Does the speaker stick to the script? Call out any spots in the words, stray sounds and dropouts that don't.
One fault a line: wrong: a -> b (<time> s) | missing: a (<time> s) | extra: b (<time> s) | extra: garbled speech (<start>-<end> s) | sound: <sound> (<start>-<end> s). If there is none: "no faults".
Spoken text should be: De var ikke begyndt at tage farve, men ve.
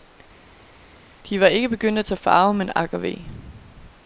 extra: ak og (2.7 s)